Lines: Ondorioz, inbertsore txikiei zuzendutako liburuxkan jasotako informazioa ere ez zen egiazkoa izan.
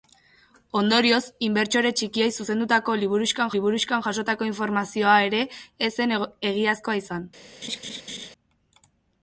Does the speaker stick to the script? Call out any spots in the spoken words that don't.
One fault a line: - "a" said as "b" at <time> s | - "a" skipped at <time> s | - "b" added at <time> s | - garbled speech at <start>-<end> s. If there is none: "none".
- "liburuxkan" added at 3.5 s